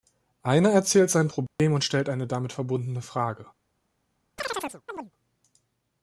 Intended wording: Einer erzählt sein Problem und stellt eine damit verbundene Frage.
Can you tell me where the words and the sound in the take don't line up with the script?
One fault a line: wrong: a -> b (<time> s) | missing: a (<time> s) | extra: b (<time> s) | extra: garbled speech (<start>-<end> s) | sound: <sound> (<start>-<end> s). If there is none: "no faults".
sound: dropout (1.5-1.6 s)
sound: chirp (4.4-5.1 s)